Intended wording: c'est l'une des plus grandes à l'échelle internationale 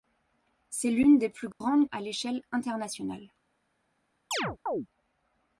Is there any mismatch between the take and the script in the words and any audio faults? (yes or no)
yes